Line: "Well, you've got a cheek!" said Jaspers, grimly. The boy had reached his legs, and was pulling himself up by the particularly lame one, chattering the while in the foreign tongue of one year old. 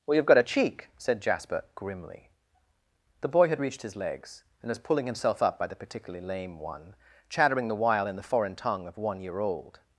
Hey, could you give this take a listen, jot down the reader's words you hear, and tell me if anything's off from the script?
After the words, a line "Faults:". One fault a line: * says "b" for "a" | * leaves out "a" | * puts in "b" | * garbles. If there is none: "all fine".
"Well, you've got a cheek!" said Jasper, grimly. The boy had reached his legs, and was pulling himself up by the particularly lame one, chattering the while in the foreign tongue of one year old.
Faults:
* says "Jasper" for "Jaspers"